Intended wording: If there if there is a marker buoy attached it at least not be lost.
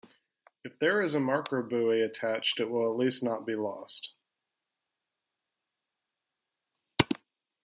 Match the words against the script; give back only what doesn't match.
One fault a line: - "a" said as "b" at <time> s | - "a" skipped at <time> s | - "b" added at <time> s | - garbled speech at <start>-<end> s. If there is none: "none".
- "if there" skipped at 1.0 s
- "will" added at 2.7 s